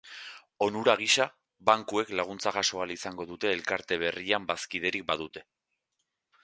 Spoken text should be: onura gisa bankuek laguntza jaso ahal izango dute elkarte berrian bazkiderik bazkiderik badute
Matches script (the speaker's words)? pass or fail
fail